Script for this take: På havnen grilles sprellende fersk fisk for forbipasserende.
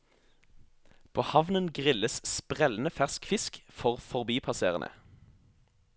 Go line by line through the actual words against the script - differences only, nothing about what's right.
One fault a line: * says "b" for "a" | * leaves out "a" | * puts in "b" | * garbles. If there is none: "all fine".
all fine